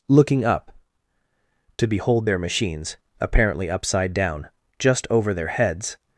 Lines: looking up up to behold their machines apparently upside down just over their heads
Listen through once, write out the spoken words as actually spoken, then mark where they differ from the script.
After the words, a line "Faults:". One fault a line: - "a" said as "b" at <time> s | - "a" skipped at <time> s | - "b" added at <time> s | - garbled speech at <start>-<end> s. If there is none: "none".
looking up to behold their machines apparently upside down just over their heads
Faults:
- "up" skipped at 0.7 s